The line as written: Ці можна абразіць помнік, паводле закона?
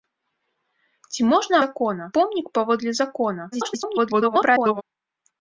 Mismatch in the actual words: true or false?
true